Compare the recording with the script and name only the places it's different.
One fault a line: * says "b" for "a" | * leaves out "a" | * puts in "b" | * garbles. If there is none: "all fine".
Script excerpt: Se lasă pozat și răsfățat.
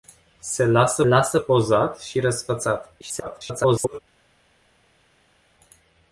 * puts in "lasă"
* garbles